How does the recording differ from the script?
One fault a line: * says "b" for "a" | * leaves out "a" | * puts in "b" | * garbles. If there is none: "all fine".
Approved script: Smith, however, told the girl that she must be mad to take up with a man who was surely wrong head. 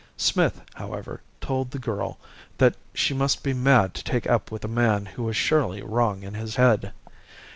* puts in "in his"